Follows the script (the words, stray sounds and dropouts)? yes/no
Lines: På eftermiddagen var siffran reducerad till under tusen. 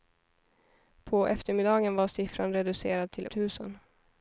no